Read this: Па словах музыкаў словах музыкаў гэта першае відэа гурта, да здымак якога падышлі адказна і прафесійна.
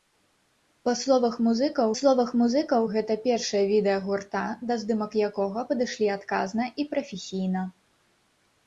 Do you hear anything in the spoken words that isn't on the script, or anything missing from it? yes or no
no